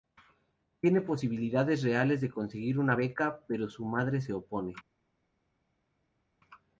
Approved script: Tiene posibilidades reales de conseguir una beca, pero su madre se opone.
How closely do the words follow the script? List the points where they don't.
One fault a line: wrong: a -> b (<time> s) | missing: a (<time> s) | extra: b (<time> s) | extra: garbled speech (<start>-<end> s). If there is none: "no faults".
no faults